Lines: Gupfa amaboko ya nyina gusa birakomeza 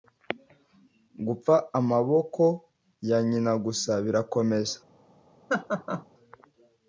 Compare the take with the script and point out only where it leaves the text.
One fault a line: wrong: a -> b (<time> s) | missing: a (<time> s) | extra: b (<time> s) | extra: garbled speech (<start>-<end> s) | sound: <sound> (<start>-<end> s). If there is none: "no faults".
sound: laugh (5.5-6.0 s)